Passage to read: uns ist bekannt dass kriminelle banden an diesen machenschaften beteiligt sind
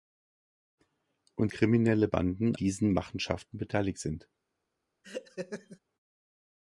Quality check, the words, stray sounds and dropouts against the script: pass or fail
fail